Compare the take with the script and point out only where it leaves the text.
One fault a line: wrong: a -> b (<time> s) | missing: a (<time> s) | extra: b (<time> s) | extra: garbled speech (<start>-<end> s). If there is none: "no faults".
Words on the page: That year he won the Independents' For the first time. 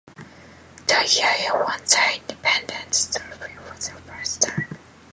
extra: Trophy (3.1 s)